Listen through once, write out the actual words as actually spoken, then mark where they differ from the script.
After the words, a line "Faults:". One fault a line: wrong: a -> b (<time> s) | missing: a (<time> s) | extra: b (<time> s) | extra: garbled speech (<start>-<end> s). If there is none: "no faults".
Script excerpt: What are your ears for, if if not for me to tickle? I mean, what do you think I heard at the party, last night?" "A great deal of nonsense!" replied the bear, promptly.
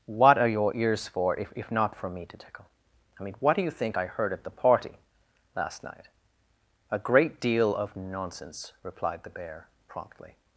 What are your ears for, if if not for me to tickle? I mean, what do you think I heard at the party, last night?" "A great deal of nonsense!" replied the bear, promptly.
Faults:
no faults